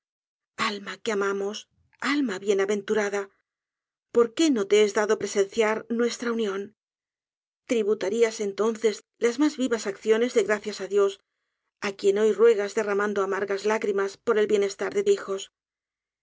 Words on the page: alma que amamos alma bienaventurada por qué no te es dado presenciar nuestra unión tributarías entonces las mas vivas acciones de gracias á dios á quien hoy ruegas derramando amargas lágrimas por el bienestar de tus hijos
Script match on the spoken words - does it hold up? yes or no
no